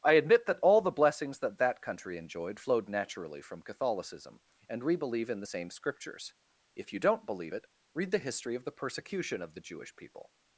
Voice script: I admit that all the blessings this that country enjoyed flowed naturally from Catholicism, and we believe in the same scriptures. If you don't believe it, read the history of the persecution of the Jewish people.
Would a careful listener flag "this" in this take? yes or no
yes